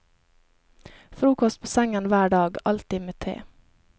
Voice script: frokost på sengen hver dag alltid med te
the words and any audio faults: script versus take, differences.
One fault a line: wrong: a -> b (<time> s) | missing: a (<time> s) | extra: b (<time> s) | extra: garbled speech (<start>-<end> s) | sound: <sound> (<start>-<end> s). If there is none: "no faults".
no faults